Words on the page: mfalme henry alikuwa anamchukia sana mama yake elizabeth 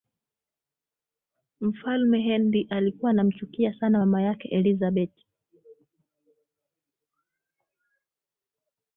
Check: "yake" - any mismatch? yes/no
no